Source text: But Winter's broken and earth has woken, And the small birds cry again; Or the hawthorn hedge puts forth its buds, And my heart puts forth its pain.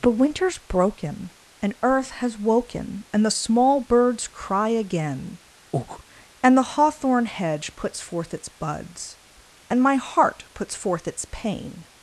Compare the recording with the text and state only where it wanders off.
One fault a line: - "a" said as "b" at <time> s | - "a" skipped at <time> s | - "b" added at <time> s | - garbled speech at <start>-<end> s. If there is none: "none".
- "Or" said as "And" at 6.4 s